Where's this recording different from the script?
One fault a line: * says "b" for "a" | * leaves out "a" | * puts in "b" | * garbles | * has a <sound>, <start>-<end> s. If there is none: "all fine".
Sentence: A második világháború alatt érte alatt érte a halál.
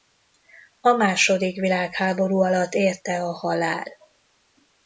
* leaves out "alatt érte"